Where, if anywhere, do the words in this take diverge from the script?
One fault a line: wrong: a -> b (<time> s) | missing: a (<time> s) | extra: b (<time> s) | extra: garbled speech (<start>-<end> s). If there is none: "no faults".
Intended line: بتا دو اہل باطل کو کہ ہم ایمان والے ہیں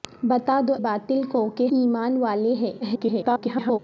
missing: اہل (0.7 s)
missing: ہم (1.7 s)
extra: garbled speech (2.8-3.8 s)